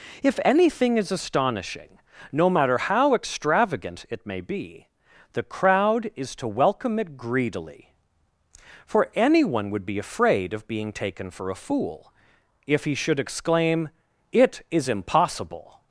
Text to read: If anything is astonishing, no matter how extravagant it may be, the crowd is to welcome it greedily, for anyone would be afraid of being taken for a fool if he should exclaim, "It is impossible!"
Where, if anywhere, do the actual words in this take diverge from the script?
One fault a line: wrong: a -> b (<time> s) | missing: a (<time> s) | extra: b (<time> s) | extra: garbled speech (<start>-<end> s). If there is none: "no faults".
no faults